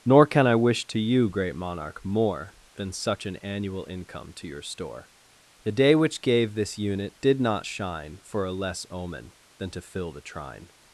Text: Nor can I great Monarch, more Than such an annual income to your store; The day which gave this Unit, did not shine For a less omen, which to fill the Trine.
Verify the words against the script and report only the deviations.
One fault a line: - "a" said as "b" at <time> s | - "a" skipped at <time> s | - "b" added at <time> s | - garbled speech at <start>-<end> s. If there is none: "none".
- "wish to you" added at 0.6 s
- "which" said as "than" at 9.6 s